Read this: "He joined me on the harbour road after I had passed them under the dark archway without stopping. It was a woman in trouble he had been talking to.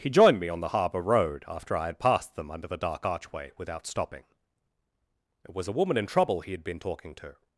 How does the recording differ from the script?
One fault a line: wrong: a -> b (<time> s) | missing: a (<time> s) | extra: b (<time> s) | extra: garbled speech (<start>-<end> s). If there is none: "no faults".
no faults